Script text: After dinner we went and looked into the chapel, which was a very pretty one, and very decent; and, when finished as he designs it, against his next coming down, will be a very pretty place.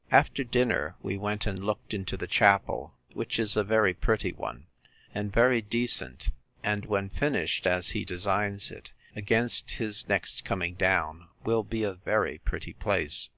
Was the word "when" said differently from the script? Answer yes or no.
no